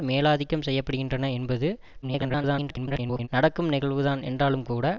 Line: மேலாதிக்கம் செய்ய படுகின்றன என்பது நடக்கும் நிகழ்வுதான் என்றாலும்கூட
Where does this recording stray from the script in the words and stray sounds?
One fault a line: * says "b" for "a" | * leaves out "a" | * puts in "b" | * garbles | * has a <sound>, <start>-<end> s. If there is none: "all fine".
* garbles